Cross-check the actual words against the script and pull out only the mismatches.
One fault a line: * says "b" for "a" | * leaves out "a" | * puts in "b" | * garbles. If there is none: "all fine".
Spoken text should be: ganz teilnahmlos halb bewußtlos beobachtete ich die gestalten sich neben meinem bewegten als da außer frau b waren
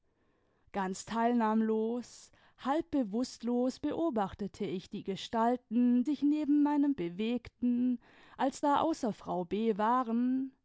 all fine